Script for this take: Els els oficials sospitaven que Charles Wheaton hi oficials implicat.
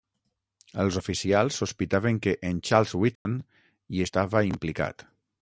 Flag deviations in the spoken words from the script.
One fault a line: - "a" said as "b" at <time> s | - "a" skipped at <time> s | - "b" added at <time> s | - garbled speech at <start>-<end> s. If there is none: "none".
- "els" skipped at 0.9 s
- "en" added at 2.5 s
- "oficials" said as "estava" at 4.0 s